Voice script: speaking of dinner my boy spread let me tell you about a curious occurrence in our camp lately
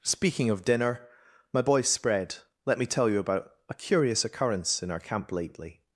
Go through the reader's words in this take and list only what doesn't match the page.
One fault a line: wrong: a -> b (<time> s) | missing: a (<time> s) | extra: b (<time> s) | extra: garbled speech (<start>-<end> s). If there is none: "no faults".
no faults